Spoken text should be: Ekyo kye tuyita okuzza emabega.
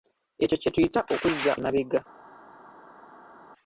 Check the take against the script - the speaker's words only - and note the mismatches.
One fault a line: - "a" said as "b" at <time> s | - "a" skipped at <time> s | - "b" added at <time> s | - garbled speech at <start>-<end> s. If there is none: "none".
none